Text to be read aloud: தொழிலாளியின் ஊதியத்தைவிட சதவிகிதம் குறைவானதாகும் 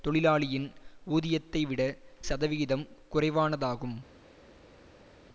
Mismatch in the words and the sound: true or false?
false